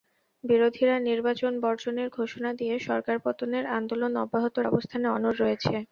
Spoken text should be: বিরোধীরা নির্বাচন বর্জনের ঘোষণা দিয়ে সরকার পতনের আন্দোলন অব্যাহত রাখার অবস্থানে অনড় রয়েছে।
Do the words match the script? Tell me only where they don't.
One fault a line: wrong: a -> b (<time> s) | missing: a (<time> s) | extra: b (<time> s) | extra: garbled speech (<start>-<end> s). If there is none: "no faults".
missing: রাখার (4.5 s)